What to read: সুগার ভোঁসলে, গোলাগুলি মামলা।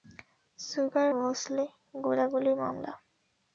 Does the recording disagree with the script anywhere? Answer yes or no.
no